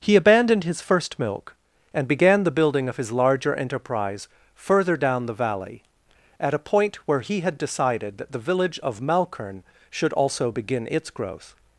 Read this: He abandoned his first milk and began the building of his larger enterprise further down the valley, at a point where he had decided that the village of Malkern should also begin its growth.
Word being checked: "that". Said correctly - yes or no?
yes